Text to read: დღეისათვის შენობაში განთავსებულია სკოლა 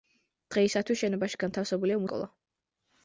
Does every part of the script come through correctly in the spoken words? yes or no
yes